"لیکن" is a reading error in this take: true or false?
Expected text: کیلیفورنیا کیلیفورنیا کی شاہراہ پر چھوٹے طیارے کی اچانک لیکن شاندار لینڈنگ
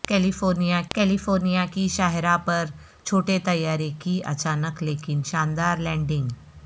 false